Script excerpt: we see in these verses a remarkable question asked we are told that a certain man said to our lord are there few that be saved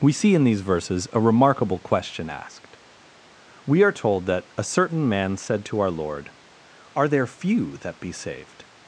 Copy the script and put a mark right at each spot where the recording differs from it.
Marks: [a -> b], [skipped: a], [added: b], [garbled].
we see in these verses a remarkable question asked we are told that a certain man said to our lord are there few that be saved